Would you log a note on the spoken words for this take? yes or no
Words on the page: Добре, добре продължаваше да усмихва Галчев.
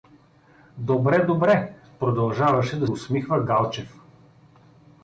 no